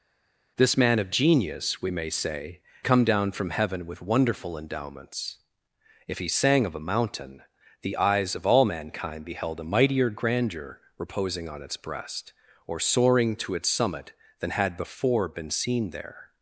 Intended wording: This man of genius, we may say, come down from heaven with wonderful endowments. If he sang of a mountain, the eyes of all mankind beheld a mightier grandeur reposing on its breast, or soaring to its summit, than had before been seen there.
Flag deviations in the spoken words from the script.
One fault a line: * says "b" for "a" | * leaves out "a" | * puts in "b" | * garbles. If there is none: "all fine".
all fine